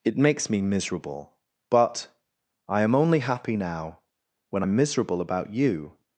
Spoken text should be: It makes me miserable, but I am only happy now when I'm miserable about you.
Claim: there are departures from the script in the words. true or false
false